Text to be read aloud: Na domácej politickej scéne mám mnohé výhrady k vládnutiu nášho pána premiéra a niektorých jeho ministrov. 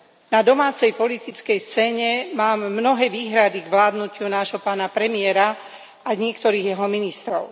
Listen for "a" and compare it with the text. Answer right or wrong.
right